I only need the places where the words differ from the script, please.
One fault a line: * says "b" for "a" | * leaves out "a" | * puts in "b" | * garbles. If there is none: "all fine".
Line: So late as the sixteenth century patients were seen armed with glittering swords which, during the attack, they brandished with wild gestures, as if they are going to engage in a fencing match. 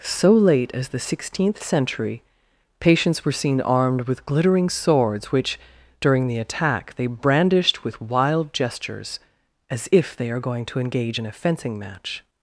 all fine